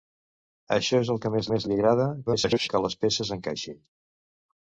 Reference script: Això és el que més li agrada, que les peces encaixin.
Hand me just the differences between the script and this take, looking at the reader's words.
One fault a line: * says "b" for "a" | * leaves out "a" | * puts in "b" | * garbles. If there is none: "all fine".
* puts in "més"
* garbles